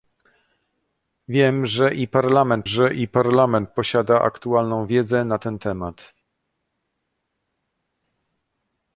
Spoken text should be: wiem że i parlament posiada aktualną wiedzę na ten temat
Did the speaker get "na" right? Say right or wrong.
right